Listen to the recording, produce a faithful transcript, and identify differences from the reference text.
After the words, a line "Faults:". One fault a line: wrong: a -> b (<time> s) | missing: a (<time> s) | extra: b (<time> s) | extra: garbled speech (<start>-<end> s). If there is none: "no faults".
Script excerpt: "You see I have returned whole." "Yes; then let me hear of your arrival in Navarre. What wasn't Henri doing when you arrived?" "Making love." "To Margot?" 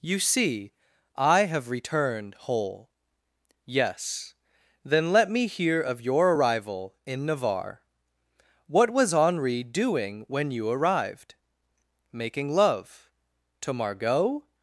"You see I have returned whole." "Yes; then let me hear of your arrival in Navarre. What was Henri doing when you arrived?" "Making love." "To Margot?"
Faults:
wrong: wasn't -> was (8.9 s)